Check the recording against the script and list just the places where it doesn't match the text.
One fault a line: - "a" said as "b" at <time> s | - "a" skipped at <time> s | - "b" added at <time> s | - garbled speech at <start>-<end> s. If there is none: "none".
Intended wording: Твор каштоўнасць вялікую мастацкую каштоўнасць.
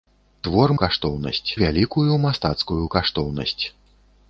none